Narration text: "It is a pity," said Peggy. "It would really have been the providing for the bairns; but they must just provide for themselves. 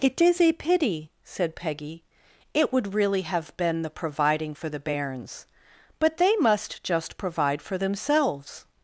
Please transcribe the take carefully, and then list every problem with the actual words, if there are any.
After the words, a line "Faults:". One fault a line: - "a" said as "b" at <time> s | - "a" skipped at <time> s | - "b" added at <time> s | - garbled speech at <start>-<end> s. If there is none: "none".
"It is a pity," said Peggy. "It would really have been the providing for the bairns; but they must just provide for themselves.
Faults:
none